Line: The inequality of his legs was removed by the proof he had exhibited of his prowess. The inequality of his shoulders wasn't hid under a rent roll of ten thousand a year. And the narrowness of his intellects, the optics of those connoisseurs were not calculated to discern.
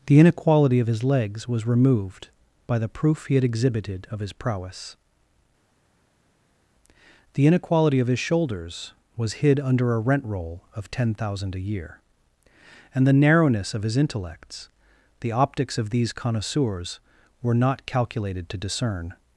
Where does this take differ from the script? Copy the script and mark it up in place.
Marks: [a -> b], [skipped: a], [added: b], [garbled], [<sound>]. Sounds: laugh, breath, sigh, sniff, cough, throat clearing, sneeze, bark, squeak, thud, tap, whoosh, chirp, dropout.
The inequality of his legs was removed by the proof he had exhibited of his prowess. The inequality of his shoulders [wasn't -> was] hid under a rent roll of ten thousand a year. And the narrowness of his intellects, the optics of [those -> these] connoisseurs were not calculated to discern.